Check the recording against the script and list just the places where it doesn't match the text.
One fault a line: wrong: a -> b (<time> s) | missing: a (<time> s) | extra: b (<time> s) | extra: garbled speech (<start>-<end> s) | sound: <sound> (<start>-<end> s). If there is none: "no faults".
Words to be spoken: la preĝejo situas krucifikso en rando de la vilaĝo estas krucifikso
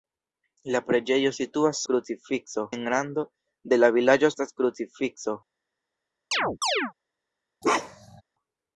sound: chirp (6.3-6.9 s)
sound: bark (7.6-8.2 s)